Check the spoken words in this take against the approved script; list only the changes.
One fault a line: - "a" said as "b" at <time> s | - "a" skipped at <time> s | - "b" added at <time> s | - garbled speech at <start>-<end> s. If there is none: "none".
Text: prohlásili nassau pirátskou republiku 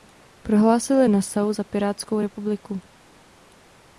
- "za" added at 1.5 s